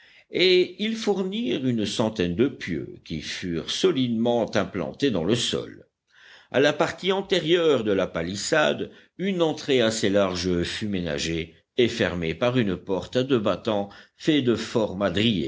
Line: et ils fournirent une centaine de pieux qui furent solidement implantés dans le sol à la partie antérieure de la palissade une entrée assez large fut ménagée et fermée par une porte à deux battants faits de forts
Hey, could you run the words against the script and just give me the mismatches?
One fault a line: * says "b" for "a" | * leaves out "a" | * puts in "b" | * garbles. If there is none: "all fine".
all fine